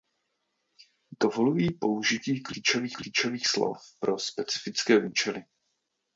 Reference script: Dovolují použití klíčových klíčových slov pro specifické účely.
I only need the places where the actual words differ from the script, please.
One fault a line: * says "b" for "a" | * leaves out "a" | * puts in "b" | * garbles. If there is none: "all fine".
all fine